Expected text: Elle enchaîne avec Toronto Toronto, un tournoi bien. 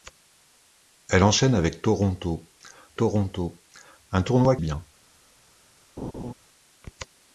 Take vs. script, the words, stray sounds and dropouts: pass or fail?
fail